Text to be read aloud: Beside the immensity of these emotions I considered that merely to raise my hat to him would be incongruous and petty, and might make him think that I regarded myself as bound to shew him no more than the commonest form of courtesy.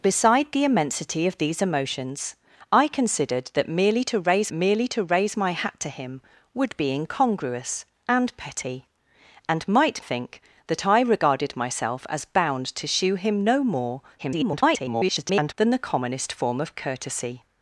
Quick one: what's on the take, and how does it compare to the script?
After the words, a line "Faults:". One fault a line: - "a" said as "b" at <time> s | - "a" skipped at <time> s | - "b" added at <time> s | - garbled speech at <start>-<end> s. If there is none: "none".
Beside the immensity of these emotions I considered that merely to raise merely to raise my hat to him would be incongruous and petty, and might think that I regarded myself as bound to shew him no more [garbled] than the commonest form of courtesy.
Faults:
- "merely to raise" added at 4.5 s
- "make him" skipped at 10.0 s
- garbled speech at 14.2-15.5 s